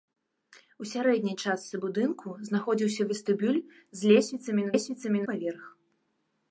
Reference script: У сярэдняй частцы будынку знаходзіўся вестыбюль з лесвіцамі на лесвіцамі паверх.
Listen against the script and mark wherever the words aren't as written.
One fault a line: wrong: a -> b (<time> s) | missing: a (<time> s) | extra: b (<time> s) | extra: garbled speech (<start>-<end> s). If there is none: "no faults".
no faults